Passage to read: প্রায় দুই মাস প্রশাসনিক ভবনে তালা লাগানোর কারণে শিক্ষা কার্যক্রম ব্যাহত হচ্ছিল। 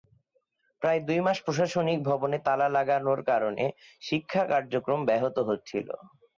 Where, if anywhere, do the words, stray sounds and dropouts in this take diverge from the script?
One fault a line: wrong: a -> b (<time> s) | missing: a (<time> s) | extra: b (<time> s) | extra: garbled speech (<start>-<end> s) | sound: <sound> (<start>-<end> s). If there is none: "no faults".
no faults